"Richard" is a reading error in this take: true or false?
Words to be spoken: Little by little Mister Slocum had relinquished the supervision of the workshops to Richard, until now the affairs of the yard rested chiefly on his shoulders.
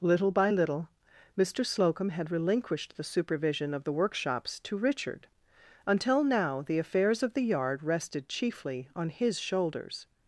false